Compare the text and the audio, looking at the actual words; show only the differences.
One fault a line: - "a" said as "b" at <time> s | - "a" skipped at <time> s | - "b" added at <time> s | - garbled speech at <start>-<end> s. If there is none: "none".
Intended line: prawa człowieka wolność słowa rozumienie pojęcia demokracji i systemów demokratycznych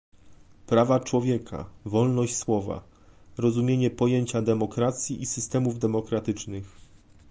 none